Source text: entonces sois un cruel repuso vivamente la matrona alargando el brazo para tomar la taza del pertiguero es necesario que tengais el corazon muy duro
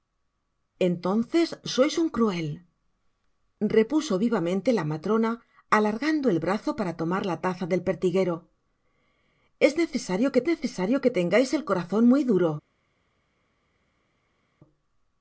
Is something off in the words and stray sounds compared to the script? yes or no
yes